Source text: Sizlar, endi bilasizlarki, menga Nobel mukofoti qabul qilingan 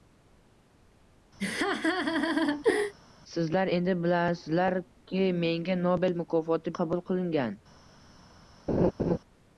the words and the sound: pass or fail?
fail